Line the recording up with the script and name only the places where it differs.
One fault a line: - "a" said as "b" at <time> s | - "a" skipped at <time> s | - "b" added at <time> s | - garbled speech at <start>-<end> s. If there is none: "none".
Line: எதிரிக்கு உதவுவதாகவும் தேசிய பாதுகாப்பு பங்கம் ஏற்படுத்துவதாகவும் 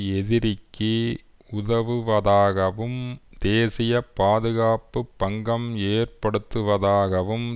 none